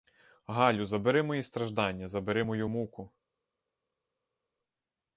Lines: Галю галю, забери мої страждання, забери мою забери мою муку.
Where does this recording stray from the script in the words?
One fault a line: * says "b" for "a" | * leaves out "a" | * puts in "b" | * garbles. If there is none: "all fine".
* leaves out "галю"
* leaves out "забери мою"